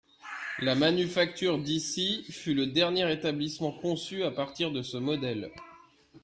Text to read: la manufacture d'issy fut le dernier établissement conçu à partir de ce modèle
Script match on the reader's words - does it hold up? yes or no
yes